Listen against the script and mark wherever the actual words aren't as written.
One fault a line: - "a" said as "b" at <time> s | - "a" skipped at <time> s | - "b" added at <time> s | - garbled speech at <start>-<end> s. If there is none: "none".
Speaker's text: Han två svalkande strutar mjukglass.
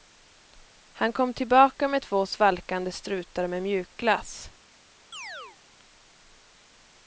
- "kom tillbaka med" added at 1.1 s
- "med" added at 3.5 s